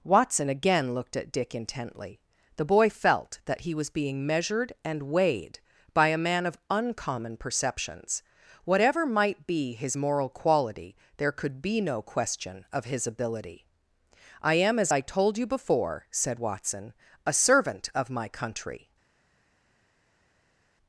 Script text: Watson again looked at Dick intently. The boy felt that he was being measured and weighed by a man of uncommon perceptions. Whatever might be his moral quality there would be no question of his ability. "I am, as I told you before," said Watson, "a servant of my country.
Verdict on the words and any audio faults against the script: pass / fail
fail